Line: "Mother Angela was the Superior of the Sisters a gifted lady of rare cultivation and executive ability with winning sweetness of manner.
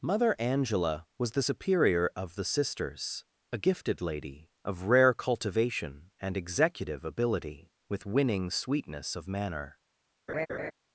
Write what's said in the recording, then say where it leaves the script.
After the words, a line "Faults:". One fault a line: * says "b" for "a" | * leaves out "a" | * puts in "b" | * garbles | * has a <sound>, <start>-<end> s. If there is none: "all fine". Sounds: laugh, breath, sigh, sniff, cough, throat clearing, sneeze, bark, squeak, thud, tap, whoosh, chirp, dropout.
"Mother Angela was the Superior of the Sisters a gifted lady of rare cultivation and executive ability with winning sweetness of manner.
Faults:
* has a laugh, 10.3-10.7 s